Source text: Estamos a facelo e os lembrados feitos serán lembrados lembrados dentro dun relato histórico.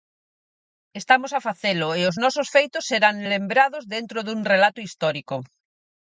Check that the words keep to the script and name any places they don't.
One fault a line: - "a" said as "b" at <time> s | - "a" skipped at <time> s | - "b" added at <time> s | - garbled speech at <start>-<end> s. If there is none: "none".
- "lembrados" said as "nosos" at 2.2 s
- "lembrados" skipped at 3.8 s